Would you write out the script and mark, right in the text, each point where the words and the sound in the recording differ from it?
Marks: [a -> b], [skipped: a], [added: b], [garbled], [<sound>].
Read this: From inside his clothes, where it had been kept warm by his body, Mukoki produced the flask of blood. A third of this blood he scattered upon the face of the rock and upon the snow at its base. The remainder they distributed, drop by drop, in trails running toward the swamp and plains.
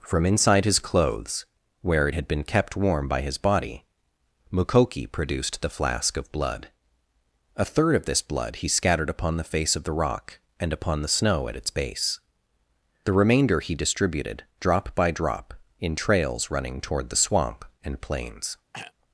From inside his clothes, where it had been kept warm by his body, Mukoki produced the flask of blood. A third of this blood he scattered upon the face of the rock and upon the snow at its base. The remainder [they -> he] distributed, drop by drop, in trails running toward the swamp and plains. [throat clearing]